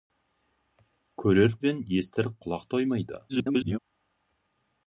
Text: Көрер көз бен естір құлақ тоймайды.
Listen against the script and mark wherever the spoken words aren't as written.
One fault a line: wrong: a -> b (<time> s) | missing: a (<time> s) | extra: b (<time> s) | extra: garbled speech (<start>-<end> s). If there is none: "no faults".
missing: көз (1.5 s)
extra: garbled speech (3.3-3.8 s)